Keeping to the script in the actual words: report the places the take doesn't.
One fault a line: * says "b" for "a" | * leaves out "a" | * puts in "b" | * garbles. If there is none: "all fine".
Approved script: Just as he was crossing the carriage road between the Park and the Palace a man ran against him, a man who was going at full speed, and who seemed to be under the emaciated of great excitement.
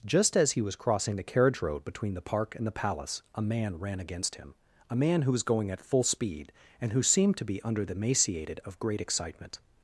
all fine